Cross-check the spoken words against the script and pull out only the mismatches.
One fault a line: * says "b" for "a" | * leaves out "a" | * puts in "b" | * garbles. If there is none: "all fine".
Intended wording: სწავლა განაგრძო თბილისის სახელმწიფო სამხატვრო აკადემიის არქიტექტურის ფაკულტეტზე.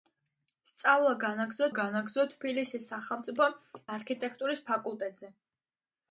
* puts in "განაგრძო"
* leaves out "სამხატვრო აკადემიის"